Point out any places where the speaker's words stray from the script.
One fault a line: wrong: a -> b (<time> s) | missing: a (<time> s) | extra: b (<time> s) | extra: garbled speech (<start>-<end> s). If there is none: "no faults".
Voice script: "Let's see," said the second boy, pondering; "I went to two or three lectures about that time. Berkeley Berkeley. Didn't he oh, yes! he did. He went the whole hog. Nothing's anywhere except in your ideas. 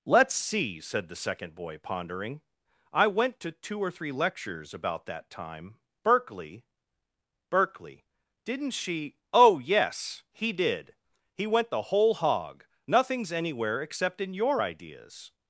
wrong: he -> she (8.7 s)